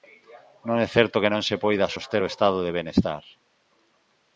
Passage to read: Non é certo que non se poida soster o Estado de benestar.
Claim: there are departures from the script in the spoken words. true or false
false